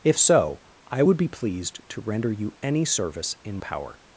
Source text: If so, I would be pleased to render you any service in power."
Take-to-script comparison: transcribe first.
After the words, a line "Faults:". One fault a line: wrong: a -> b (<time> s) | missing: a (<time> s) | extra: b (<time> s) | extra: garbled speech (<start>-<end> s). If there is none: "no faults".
If so, I would be pleased to render you any service in power."
Faults:
no faults